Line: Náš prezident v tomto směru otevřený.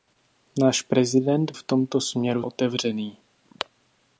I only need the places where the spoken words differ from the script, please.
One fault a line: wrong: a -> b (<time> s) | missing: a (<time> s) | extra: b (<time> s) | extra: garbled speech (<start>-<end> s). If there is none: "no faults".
no faults